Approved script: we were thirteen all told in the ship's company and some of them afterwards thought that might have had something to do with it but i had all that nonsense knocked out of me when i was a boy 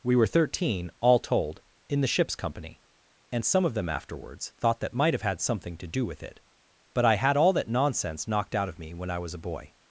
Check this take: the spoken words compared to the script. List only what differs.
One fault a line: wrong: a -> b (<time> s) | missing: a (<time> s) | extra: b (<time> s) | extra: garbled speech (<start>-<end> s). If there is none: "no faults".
no faults